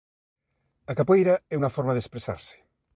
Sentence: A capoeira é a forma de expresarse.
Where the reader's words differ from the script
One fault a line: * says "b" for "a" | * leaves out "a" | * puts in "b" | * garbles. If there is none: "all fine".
* says "unha" for "a"